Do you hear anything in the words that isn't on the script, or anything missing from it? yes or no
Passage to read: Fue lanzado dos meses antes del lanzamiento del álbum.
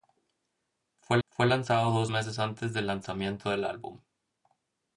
yes